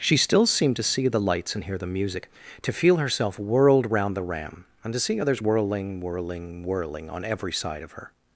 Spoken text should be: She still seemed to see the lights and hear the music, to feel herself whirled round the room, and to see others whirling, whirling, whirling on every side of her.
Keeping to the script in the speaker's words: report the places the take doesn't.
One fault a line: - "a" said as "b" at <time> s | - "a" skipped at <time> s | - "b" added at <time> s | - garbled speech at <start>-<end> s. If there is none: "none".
- "room" said as "ram" at 4.2 s